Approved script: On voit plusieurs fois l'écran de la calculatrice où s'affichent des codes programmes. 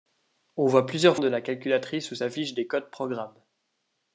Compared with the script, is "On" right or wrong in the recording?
right